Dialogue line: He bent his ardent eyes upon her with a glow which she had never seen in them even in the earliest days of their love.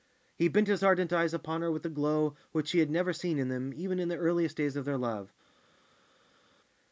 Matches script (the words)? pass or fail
pass